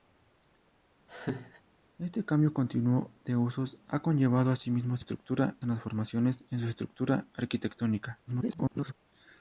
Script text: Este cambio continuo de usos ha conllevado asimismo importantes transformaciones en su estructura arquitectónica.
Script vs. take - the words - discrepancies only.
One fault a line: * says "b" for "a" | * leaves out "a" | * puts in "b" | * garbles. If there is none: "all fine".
* says "estructura" for "importantes"
* garbles